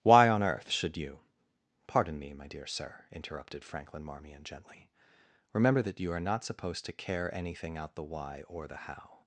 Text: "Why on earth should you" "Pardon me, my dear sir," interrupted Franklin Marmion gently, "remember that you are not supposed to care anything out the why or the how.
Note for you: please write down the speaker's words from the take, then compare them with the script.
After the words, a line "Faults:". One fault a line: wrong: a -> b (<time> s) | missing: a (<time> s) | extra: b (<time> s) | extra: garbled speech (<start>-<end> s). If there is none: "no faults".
"Why on earth should you" "Pardon me, my dear sir," interrupted Franklin Marmion gently, "remember that you are not supposed to care anything out the why or the how.
Faults:
no faults